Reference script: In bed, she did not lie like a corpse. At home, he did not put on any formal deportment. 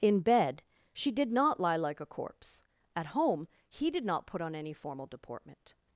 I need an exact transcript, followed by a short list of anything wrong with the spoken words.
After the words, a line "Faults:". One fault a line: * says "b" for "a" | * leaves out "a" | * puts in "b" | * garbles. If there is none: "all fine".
In bed, she did not lie like a corpse. At home, he did not put on any formal deportment.
Faults:
all fine